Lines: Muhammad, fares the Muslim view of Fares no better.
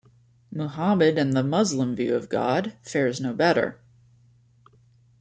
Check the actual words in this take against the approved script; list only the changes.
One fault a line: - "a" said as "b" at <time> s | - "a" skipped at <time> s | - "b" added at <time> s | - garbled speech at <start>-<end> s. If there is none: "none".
- "fares" said as "and" at 1.2 s
- "God" added at 2.3 s